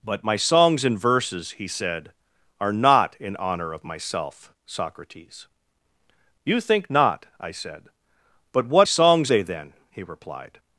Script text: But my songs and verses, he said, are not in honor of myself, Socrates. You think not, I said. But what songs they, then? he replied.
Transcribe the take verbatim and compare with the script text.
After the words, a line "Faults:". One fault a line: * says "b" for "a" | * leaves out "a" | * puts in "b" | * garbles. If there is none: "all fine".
But my songs and verses, he said, are not in honor of myself, Socrates. You think not, I said. But what songs they, then? he replied.
Faults:
all fine